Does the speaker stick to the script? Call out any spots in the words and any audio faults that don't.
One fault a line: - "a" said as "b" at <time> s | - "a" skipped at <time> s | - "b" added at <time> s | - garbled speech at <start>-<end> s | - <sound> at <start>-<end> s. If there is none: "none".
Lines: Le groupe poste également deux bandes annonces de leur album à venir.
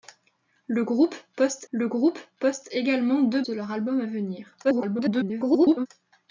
- "le groupe poste" added at 1.7 s
- "bandes annonces" skipped at 3.4 s
- garbled speech at 4.6-5.9 s